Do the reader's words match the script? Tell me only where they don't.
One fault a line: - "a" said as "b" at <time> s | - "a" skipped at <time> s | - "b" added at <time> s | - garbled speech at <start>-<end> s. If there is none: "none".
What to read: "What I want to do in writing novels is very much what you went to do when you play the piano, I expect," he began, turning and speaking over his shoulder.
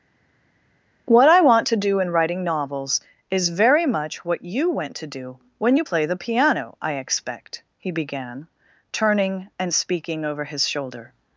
none